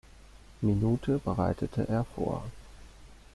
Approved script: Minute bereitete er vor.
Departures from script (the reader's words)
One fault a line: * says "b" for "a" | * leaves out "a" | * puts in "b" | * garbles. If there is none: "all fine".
all fine